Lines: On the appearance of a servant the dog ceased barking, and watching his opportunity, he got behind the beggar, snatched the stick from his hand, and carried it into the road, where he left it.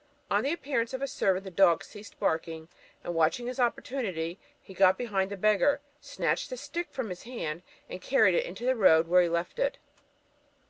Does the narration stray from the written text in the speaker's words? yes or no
no